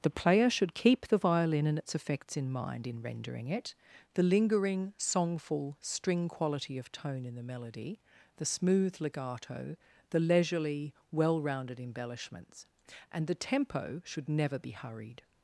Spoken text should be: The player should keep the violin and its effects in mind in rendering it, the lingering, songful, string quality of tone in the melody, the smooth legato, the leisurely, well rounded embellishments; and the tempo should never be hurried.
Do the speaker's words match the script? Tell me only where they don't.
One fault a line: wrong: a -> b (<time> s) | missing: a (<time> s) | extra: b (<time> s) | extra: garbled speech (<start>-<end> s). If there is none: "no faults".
no faults